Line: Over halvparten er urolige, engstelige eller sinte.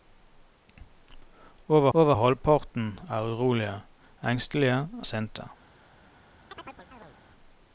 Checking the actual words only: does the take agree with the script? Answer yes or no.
no